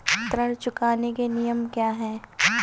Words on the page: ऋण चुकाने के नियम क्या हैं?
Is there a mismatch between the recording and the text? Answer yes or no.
no